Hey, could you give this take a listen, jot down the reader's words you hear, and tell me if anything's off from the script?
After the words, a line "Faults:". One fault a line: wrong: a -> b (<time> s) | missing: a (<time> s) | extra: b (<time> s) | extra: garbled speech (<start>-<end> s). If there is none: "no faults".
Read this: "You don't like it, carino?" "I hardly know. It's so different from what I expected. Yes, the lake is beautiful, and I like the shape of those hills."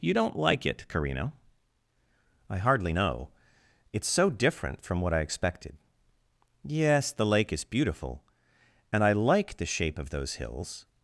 "You don't like it, carino?" "I hardly know. It's so different from what I expected. Yes, the lake is beautiful, and I like the shape of those hills."
Faults:
no faults